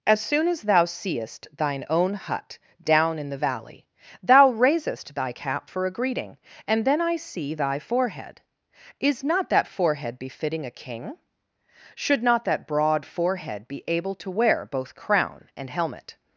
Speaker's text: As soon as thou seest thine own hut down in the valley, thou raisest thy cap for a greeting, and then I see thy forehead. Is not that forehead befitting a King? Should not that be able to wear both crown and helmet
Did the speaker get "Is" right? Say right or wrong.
right